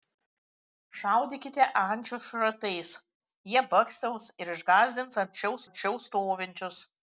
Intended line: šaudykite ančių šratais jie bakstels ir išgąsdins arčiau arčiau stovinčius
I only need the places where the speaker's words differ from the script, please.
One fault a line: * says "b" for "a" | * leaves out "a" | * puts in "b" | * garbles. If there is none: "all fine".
all fine